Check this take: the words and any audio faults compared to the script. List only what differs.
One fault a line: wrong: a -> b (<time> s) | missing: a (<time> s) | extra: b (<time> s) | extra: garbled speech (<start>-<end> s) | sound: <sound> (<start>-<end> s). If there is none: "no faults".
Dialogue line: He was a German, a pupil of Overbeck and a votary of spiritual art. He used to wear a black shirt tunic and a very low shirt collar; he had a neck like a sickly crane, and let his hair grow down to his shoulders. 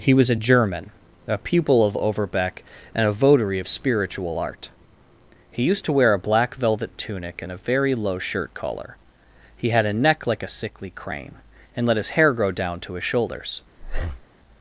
wrong: shirt -> velvet (6.6 s)
sound: breath (13.8-14.3 s)